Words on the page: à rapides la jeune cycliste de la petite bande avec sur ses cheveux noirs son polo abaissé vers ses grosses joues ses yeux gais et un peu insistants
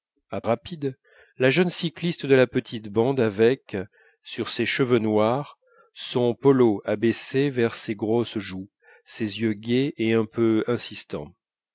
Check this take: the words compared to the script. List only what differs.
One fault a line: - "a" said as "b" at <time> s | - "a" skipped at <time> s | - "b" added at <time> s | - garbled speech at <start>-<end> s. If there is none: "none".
none